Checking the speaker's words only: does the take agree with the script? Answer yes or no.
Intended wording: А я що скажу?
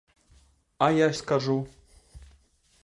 no